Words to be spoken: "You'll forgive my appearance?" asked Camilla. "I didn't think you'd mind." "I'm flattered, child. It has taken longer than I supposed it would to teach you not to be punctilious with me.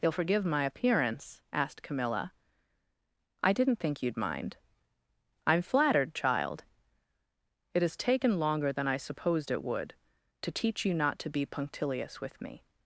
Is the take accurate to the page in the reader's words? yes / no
yes